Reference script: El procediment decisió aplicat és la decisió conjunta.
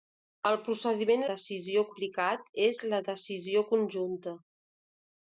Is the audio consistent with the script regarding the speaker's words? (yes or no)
yes